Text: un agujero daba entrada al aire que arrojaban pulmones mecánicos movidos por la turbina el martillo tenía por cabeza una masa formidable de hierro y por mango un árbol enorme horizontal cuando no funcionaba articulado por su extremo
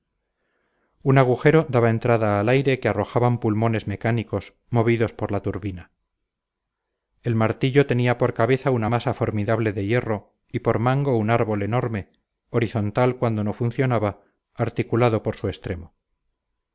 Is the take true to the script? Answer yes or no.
yes